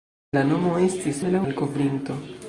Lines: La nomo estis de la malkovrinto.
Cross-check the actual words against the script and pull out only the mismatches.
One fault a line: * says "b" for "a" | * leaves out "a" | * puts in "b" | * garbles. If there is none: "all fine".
all fine